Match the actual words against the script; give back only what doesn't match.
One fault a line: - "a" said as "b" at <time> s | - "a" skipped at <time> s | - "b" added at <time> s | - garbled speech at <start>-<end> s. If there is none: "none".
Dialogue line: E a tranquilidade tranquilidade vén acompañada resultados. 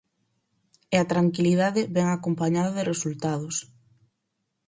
- "tranquilidade" skipped at 1.8 s
- "de" added at 2.8 s